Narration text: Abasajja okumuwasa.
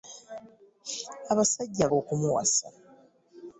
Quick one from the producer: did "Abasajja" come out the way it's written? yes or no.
yes